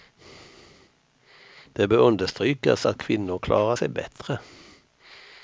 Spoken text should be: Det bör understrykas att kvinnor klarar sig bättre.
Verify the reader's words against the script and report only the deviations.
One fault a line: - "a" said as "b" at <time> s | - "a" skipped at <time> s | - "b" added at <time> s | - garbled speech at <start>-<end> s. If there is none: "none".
none